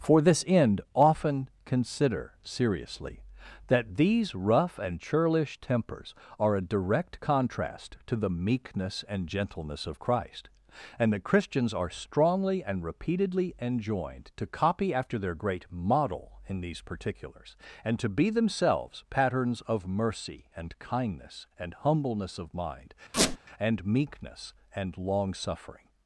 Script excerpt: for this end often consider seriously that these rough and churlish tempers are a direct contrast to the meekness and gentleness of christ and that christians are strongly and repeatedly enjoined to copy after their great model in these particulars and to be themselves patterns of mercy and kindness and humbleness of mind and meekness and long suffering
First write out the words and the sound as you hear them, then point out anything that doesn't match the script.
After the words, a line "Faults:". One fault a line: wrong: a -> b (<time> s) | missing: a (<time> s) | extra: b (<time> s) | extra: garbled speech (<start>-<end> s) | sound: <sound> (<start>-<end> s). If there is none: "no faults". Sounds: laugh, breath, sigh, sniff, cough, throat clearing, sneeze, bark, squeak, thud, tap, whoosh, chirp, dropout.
for this end often consider seriously that these rough and churlish tempers are a direct contrast to the meekness and gentleness of christ and that christians are strongly and repeatedly enjoined to copy after their great model in these particulars and to be themselves patterns of mercy and kindness and humbleness of mind and meekness and long suffering
Faults:
sound: squeak (23.1-23.4 s)